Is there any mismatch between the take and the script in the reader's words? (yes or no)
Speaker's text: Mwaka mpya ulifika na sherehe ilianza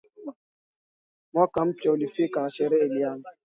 no